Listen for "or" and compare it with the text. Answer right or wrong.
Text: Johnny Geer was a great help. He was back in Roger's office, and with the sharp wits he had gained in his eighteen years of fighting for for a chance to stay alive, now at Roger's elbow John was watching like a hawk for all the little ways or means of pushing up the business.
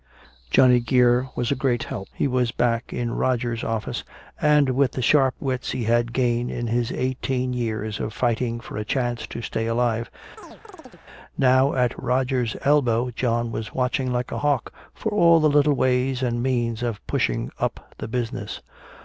wrong